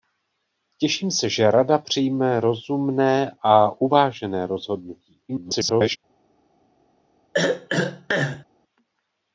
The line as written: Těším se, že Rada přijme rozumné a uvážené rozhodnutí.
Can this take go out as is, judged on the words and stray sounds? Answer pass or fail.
fail